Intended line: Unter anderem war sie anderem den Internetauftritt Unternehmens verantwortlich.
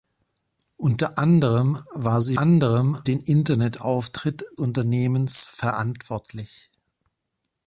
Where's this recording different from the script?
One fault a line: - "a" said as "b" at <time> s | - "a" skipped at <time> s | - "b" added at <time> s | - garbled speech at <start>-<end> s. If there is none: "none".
none